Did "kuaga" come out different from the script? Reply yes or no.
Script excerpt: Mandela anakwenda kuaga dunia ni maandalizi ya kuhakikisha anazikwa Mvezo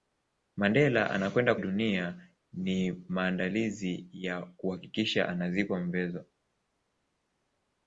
yes